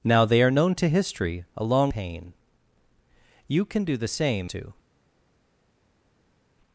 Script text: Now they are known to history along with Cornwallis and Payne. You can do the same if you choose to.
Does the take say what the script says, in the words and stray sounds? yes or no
no